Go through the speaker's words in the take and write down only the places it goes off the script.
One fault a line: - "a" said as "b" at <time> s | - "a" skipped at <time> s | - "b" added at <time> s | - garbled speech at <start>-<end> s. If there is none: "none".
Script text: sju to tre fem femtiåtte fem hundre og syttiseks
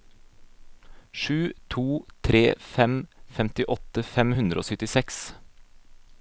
none